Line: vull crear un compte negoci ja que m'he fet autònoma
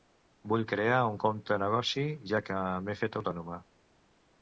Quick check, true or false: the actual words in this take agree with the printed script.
true